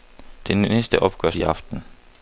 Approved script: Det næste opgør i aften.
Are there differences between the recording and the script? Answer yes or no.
no